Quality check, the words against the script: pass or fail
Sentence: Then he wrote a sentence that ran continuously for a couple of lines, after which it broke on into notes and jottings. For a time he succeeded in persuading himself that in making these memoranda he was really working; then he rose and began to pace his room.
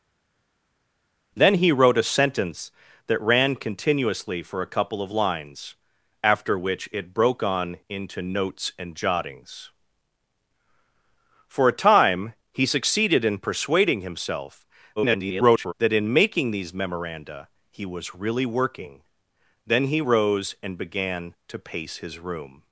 fail